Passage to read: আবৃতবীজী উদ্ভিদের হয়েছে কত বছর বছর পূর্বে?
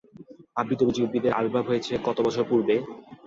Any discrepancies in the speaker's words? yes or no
yes